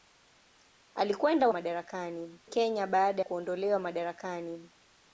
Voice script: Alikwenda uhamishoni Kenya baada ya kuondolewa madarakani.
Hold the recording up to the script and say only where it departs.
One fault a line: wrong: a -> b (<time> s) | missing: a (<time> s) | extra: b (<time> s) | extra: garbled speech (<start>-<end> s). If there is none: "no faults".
wrong: uhamishoni -> madarakani (1.5 s)
missing: ya (3.2 s)